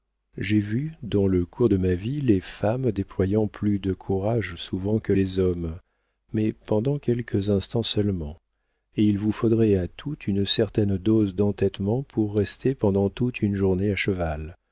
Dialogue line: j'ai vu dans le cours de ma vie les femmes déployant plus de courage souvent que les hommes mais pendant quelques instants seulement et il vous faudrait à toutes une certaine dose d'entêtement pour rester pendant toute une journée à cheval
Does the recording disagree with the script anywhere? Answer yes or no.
no